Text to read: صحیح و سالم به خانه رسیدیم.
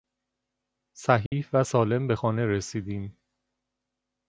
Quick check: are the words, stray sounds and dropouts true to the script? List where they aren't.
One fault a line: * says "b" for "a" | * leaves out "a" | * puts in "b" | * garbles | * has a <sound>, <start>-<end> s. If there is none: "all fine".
* has a dropout, 1.3-1.3 s